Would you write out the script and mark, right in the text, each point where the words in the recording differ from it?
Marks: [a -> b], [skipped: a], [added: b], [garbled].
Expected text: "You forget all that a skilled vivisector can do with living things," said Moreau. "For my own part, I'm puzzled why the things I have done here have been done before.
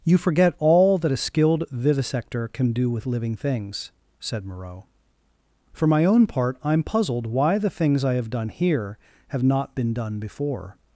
"You forget all that a skilled vivisector can do with living things," said Moreau. "For my own part, I'm puzzled why the things I have done here have [added: not] been done before.